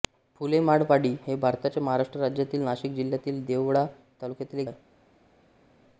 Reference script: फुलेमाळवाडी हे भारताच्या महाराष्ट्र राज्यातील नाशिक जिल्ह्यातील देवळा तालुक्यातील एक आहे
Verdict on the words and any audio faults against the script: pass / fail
pass